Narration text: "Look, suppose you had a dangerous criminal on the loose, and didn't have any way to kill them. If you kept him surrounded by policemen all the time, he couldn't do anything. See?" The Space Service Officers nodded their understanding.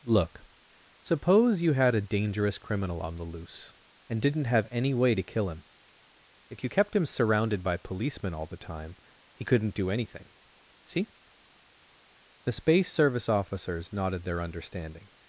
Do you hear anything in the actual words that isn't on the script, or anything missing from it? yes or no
yes